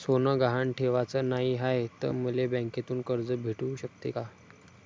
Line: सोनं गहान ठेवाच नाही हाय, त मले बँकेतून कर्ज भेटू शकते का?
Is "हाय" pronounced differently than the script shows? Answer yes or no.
no